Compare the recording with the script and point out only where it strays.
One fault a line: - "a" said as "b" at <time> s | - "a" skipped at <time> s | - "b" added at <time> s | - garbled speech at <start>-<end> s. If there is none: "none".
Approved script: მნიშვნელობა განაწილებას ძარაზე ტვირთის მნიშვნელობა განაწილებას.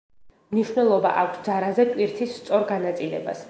- "განაწილებას" said as "აქვს" at 1.2 s
- "მნიშვნელობა" said as "სწორ" at 2.4 s